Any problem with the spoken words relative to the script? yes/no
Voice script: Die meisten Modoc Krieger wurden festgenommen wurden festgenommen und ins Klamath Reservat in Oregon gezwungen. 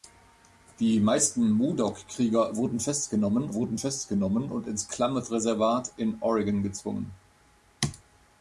no